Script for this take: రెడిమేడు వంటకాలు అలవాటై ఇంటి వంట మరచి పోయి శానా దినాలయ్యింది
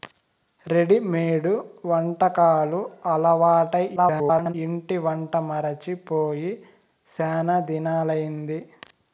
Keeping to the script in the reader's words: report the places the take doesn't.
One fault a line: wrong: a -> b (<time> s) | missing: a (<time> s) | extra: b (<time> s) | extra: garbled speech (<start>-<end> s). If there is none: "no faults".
extra: garbled speech (4.0-4.5 s)